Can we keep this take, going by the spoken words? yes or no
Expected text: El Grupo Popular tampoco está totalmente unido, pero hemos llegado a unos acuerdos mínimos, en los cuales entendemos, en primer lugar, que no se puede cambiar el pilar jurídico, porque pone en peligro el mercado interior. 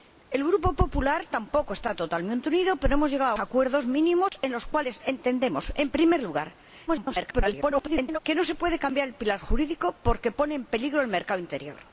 no